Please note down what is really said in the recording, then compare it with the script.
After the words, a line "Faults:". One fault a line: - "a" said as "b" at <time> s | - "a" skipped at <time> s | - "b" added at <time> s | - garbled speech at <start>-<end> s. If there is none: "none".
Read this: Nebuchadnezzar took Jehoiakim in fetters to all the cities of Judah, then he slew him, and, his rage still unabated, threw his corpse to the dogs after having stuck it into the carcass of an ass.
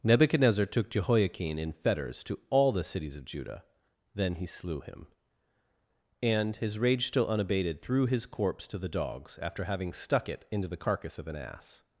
Nebuchadnezzar took Jehoiakim in fetters to all the cities of Judah, then he slew him, and, his rage still unabated, threw his corpse to the dogs after having stuck it into the carcass of an ass.
Faults:
none